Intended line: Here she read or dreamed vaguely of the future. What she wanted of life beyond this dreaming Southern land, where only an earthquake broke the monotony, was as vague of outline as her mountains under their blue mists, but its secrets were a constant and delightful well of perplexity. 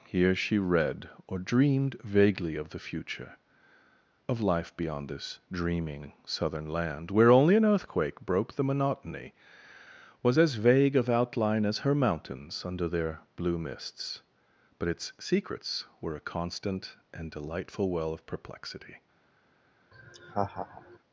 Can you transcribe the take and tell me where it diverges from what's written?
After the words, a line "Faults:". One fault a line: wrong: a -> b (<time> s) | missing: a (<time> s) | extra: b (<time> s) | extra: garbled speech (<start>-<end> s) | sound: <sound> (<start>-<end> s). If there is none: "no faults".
Here she read or dreamed vaguely of the future. Of life beyond this dreaming Southern land, where only an earthquake broke the monotony, was as vague of outline as her mountains under their blue mists, but its secrets were a constant and delightful well of perplexity.
Faults:
missing: What she wanted (3.4 s)
sound: laugh (19.9-21.0 s)